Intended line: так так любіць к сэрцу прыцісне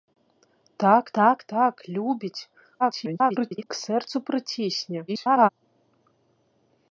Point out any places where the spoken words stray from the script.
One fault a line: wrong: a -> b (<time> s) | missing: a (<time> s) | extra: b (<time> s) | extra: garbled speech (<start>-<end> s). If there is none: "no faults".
extra: так (1.5 s)
extra: garbled speech (2.8-3.7 s)
extra: garbled speech (5.1-5.5 s)